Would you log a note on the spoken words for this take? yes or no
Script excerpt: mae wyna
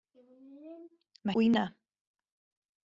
no